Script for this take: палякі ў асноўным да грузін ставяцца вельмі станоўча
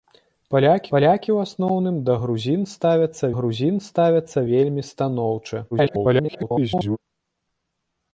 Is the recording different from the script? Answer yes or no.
yes